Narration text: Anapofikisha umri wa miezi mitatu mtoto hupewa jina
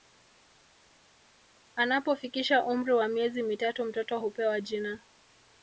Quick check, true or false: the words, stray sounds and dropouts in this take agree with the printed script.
true